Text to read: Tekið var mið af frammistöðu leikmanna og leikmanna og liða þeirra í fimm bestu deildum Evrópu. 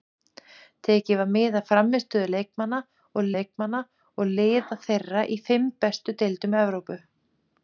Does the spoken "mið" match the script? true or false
true